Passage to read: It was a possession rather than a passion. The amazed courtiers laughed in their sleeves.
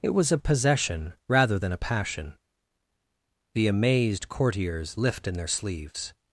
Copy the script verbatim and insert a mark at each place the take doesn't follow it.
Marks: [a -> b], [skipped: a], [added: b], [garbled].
It was a possession rather than a passion. The amazed courtiers [laughed -> lift] in their sleeves.